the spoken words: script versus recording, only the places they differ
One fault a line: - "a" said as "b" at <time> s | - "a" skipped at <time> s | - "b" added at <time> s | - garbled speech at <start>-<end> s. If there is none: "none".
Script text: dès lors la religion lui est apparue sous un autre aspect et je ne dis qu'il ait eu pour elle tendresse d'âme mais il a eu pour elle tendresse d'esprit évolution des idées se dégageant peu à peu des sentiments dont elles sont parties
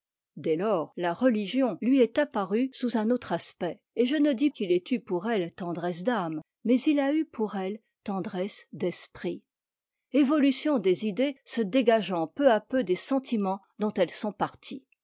none